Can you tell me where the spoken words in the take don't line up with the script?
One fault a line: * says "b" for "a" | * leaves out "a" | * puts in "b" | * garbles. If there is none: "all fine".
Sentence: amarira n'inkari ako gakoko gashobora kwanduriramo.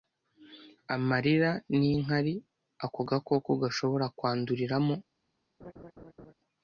all fine